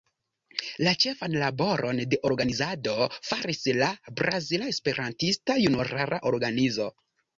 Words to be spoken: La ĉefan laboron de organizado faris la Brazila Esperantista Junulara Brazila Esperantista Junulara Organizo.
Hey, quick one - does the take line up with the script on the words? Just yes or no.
no